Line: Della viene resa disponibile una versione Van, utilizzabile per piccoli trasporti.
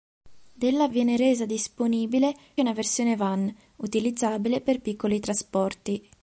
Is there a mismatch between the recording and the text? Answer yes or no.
no